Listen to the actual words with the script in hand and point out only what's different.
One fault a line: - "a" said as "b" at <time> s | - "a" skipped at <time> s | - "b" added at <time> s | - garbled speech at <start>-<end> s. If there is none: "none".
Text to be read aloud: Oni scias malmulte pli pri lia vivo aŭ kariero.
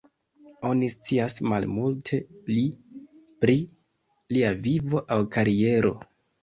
none